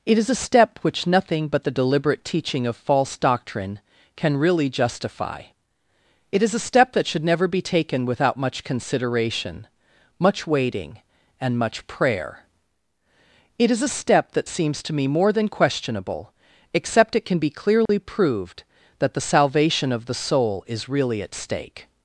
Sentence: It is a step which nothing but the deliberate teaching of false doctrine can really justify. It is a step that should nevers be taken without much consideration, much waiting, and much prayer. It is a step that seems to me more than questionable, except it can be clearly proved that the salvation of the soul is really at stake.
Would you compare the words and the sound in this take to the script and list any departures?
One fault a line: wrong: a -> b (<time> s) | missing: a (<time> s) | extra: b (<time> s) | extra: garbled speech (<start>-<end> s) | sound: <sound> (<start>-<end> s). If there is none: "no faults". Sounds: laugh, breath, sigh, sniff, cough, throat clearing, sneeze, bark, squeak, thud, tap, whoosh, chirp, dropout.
wrong: nevers -> never (7.2 s)
sound: dropout (17.9-17.9 s)